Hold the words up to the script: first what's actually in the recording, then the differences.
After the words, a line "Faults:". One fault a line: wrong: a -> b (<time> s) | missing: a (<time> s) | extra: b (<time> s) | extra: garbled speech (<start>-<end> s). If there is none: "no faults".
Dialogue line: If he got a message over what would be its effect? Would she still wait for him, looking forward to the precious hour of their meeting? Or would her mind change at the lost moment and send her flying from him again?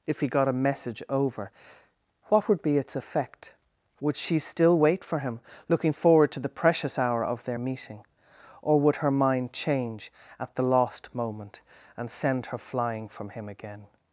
If he got a message over what would be its effect? Would she still wait for him, looking forward to the precious hour of their meeting? Or would her mind change at the lost moment and send her flying from him again?
Faults:
no faults